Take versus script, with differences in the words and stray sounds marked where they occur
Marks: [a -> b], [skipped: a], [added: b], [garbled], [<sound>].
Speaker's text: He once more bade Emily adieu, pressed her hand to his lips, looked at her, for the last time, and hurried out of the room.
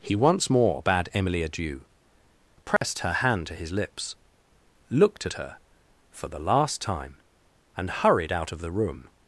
He once more bade Emily adieu, pressed [dropout] her hand to his lips, looked at her, for the last time, and hurried out of the room.